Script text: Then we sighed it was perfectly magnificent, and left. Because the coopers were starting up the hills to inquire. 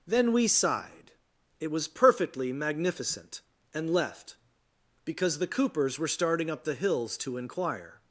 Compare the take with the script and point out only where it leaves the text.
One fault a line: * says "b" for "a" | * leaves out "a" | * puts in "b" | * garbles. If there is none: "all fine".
all fine